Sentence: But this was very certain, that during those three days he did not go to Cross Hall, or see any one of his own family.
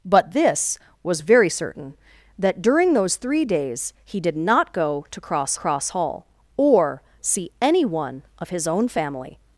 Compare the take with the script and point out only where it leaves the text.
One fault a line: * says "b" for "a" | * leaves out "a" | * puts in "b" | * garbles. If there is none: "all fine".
* puts in "Cross"